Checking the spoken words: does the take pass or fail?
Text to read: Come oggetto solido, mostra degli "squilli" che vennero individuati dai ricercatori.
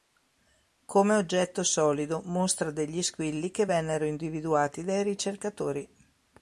pass